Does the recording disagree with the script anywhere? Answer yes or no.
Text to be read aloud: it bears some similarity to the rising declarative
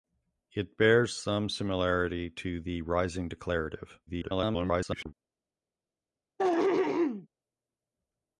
yes